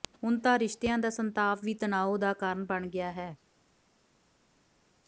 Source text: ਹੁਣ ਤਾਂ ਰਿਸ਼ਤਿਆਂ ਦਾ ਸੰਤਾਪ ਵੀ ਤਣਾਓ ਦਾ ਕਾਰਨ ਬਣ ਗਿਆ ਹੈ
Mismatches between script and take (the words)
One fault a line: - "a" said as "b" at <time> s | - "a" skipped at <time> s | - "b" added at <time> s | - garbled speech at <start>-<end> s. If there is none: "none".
none